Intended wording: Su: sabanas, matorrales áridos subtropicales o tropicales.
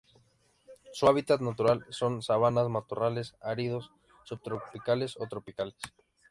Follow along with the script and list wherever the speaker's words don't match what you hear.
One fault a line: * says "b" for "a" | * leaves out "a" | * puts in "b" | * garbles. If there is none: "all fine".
* puts in "hábitat natural son"